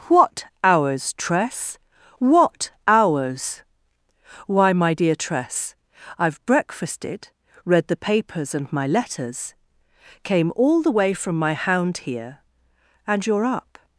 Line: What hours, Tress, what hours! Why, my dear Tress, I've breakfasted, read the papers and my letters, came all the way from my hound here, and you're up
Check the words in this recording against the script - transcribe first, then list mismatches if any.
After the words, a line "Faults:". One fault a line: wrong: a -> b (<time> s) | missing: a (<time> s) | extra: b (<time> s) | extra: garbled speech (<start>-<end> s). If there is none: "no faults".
What hours, Tress, what hours! Why, my dear Tress, I've breakfasted, read the papers and my letters, came all the way from my hound here, and you're up
Faults:
no faults